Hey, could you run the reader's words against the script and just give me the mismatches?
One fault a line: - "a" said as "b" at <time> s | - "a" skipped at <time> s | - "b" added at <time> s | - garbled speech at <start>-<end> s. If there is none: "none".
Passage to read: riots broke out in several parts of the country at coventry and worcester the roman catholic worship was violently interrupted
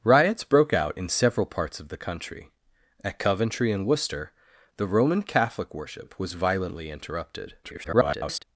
- garbled speech at 7.6-8.4 s